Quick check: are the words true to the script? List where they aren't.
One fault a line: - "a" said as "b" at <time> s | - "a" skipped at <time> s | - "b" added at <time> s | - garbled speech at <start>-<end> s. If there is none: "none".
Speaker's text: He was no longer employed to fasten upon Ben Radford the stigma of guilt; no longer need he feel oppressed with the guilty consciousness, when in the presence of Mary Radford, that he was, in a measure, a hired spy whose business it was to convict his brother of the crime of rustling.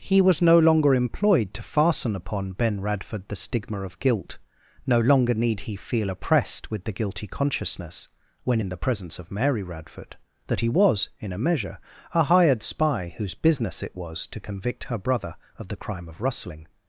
- "his" said as "her" at 14.8 s